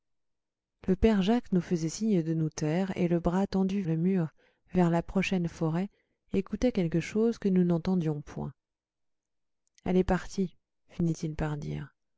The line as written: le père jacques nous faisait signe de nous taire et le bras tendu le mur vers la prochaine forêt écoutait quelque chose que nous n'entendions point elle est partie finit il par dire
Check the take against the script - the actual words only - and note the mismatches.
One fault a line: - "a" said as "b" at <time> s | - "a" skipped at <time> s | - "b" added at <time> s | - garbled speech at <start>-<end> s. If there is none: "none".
none